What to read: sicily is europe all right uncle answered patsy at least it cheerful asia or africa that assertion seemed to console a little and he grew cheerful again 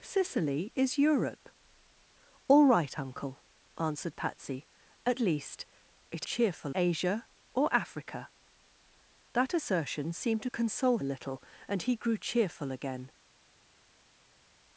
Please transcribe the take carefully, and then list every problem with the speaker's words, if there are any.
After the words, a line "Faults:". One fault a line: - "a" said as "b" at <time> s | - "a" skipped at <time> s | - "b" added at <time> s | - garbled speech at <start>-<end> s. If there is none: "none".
sicily is europe all right uncle answered patsy at least it cheerful asia or africa that assertion seemed to console a little and he grew cheerful again
Faults:
none